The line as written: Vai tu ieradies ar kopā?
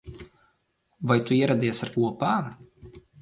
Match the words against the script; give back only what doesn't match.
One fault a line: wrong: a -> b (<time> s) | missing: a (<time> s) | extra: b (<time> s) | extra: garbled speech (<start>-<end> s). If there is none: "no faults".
no faults